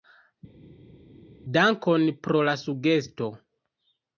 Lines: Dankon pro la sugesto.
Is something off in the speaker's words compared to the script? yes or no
no